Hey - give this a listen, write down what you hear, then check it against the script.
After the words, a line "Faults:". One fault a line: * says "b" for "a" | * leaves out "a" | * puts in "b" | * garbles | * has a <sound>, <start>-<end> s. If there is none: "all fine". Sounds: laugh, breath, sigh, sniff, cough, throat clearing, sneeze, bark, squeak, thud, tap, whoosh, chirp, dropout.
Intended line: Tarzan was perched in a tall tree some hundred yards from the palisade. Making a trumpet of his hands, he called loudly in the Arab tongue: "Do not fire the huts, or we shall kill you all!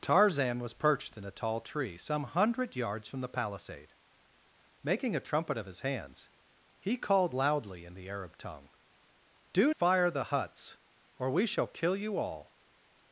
Tarzan was perched in a tall tree some hundred yards from the palisade. Making a trumpet of his hands, he called loudly in the Arab tongue: "Do fire the huts, or we shall kill you all!
Faults:
* leaves out "not"